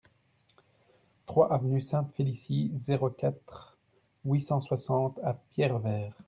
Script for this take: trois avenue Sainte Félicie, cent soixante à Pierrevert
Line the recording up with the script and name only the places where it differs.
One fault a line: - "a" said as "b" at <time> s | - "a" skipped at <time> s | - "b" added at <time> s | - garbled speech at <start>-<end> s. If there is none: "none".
- "zéro quatre huit" added at 2.8 s